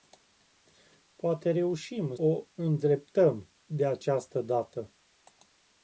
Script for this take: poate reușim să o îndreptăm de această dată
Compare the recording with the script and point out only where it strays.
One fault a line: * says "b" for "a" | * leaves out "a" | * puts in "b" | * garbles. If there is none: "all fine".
* leaves out "să"